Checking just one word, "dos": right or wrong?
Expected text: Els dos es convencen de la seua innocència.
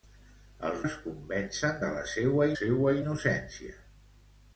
wrong